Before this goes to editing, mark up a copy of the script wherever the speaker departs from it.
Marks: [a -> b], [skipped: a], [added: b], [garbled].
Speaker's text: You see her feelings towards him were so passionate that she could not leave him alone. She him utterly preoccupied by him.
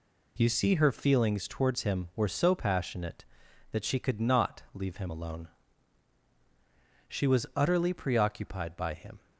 You see her feelings towards him were so passionate that she could not leave him alone. She [him -> was] utterly preoccupied by him.